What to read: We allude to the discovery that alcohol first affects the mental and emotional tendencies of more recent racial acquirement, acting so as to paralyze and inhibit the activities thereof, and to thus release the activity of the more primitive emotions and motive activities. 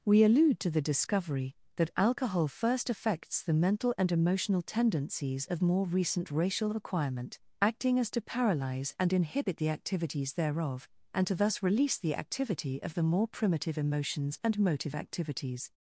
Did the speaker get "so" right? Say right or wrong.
wrong